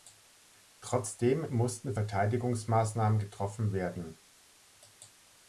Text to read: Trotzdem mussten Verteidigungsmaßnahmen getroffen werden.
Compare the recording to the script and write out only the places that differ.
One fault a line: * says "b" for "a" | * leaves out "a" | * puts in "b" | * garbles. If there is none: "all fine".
all fine